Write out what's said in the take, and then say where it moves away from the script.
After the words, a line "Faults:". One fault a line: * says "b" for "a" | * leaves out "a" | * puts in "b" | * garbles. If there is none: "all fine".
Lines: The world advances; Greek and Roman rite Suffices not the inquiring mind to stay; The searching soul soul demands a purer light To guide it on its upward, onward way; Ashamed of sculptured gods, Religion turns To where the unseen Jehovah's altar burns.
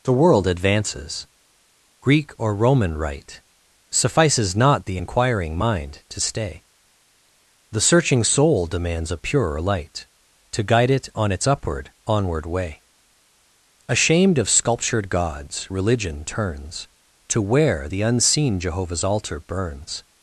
The world advances; Greek or Roman rite Suffices not the inquiring mind to stay; The searching soul demands a purer light To guide it on its upward, onward way; Ashamed of sculptured gods, Religion turns To where the unseen Jehovah's altar burns.
Faults:
* says "or" for "and"
* leaves out "soul"